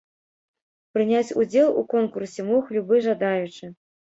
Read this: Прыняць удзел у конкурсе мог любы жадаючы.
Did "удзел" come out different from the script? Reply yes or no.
no